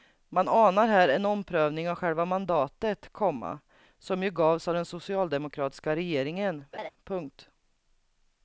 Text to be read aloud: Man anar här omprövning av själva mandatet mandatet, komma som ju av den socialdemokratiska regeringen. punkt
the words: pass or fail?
fail